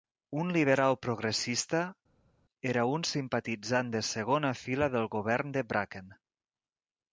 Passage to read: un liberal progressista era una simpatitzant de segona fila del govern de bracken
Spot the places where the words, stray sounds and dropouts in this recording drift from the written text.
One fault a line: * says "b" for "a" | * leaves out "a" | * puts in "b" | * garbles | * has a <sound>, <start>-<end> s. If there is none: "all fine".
* says "un" for "una"